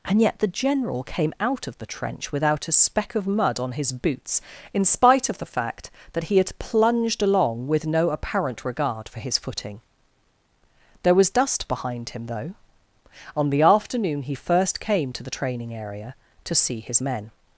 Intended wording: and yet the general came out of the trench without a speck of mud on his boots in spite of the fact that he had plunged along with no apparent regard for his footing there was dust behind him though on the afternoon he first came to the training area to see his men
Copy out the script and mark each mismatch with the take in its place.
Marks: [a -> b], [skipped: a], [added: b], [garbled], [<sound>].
and yet the general came out of the trench without a speck of mud on his boots in spite of the fact that he had plunged along with no apparent regard for his footing there was dust behind him though on the afternoon he first came to the training area to see his men